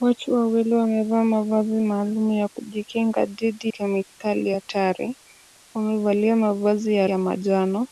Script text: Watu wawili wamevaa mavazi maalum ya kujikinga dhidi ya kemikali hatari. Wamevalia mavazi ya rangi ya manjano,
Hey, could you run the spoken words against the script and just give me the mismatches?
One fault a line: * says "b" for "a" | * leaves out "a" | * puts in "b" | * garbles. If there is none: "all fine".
* leaves out "ya"
* leaves out "rangi"